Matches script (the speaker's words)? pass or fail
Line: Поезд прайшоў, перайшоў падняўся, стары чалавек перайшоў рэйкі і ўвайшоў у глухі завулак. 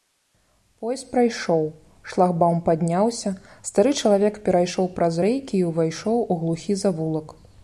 fail